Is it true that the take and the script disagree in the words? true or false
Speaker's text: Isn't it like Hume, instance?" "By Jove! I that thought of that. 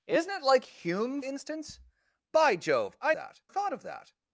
false